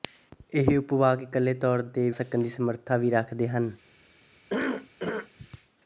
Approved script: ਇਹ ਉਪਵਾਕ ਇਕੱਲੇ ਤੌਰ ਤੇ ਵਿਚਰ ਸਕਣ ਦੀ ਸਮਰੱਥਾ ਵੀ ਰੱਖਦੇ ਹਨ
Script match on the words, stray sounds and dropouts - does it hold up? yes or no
no